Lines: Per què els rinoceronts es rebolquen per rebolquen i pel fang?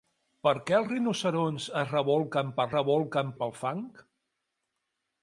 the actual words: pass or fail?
pass